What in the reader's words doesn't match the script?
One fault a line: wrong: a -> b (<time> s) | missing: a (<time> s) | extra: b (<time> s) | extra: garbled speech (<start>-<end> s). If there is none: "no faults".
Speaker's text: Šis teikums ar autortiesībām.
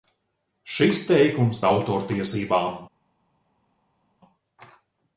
no faults